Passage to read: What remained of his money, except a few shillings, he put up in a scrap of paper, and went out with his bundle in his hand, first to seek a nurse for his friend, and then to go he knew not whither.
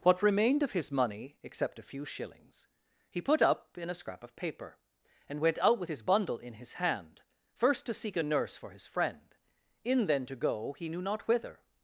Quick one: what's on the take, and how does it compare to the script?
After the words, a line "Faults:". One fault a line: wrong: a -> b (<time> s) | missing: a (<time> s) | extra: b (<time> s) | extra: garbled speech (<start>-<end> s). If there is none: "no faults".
What remained of his money, except a few shillings, he put up in a scrap of paper, and went out with his bundle in his hand, first to seek a nurse for his friend, in then to go he knew not whither.
Faults:
wrong: and -> in (9.8 s)